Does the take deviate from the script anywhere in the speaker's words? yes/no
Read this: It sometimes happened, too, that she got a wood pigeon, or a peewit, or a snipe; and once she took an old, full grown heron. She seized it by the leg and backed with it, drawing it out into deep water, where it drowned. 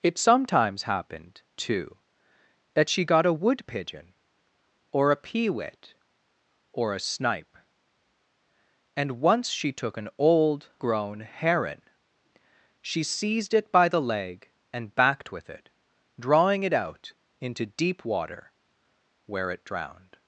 yes